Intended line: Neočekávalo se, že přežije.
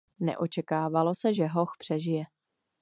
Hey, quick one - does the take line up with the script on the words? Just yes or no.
no